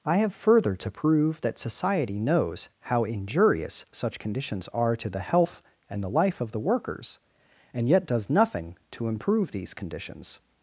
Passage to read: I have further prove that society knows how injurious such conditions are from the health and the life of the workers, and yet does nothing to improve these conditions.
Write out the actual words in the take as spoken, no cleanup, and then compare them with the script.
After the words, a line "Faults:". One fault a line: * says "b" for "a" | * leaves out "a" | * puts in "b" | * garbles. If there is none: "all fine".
I have further to prove that society knows how injurious such conditions are to the health and the life of the workers, and yet does nothing to improve these conditions.
Faults:
* puts in "to"
* says "to" for "from"